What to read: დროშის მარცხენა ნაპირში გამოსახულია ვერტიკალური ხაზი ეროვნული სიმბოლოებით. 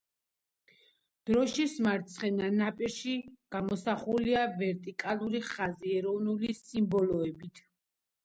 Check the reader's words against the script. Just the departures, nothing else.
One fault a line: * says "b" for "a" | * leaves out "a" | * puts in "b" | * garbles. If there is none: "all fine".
all fine